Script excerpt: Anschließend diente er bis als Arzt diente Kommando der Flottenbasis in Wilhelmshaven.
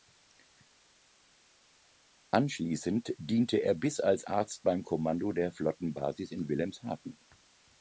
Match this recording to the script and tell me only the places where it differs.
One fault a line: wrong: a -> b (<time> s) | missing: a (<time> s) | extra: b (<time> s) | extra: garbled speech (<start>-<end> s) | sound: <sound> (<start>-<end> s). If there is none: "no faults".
wrong: diente -> beim (4.6 s)